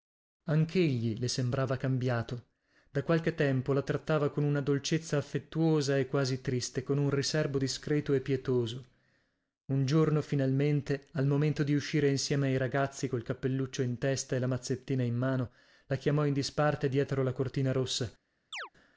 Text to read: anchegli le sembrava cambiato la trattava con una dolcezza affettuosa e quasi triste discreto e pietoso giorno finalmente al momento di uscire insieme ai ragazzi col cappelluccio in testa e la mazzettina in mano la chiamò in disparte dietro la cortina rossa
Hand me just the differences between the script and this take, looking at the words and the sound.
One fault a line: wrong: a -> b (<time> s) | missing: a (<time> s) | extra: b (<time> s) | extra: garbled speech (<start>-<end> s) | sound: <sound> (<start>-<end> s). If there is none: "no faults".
extra: da qualche tempo (2.9 s)
extra: con un riserbo (6.8 s)
extra: un (9.7 s)
sound: chirp (18.5-18.7 s)